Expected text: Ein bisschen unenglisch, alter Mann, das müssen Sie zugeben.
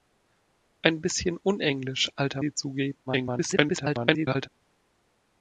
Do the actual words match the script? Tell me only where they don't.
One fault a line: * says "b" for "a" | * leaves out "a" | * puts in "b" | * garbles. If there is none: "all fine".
* leaves out "Mann das müssen"
* garbles